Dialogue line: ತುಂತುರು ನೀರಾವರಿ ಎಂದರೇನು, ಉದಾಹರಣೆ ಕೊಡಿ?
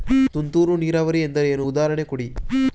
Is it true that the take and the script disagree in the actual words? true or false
false